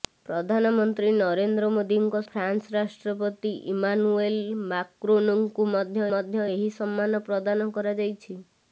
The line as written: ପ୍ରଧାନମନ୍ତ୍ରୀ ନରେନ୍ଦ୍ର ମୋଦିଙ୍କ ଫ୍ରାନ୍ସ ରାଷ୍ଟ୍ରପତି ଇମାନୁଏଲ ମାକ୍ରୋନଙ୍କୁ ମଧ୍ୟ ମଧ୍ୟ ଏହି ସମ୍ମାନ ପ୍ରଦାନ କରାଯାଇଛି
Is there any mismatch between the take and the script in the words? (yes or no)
no